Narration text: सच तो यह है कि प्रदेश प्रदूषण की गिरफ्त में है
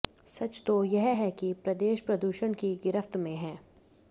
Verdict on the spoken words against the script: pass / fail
pass